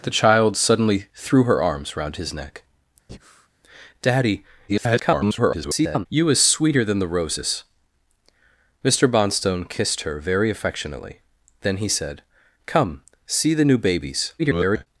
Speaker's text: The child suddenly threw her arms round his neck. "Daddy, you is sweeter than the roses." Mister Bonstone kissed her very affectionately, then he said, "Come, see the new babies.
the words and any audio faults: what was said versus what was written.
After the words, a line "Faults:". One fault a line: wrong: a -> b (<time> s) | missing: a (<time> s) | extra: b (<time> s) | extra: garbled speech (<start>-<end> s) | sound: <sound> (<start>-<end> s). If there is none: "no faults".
The child suddenly threw her arms round his neck. "Daddy, [garbled] you is sweeter than the roses." Mister Bonstone kissed her very affectionately, then he said, "Come, see the new babies. [garbled]
Faults:
sound: breath (3.1-3.5 s)
extra: garbled speech (4.7-6.1 s)
extra: garbled speech (14.4-14.9 s)